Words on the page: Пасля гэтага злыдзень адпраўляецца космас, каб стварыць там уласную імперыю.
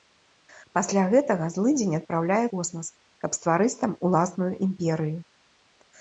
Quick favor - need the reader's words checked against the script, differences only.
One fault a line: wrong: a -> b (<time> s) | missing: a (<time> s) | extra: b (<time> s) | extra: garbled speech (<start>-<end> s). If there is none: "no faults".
no faults